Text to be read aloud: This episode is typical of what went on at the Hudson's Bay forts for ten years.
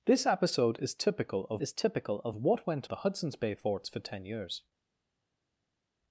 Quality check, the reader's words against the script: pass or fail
fail